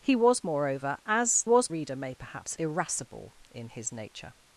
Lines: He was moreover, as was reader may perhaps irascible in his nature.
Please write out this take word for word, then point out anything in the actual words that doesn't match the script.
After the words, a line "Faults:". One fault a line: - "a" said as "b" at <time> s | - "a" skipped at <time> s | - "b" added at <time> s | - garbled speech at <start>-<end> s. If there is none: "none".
He was moreover, as was reader may perhaps irascible in his nature.
Faults:
none